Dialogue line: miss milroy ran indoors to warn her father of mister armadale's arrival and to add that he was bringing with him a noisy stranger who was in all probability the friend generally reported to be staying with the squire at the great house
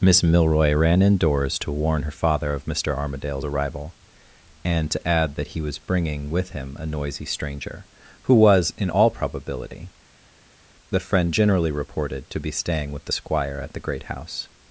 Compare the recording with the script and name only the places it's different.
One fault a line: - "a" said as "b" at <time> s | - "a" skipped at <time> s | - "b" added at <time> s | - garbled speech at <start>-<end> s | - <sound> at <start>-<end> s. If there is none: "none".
none